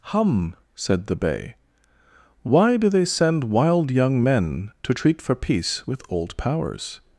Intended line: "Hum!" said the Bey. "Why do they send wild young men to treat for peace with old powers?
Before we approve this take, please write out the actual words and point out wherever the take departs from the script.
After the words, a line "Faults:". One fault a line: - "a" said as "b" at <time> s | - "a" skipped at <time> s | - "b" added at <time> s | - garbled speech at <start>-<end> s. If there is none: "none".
"Hum!" said the Bey. "Why do they send wild young men to treat for peace with old powers?
Faults:
none